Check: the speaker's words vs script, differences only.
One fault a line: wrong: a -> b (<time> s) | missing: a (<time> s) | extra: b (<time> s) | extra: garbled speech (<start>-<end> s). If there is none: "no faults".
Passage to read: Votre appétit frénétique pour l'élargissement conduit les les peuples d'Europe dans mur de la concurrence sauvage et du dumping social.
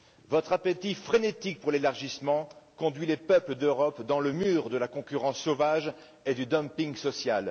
missing: les (3.2 s)
extra: le (4.2 s)